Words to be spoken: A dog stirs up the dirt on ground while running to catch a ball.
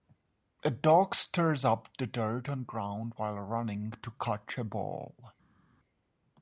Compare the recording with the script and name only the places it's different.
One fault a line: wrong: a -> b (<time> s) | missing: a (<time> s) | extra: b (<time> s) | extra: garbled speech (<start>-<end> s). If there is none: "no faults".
no faults